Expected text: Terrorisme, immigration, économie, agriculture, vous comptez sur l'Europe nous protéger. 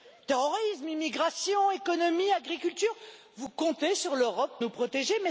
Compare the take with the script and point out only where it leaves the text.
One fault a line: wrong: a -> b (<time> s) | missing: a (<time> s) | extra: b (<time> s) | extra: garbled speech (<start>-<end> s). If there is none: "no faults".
no faults